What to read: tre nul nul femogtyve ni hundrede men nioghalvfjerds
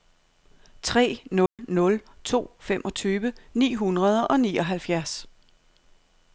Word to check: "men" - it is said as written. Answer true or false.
false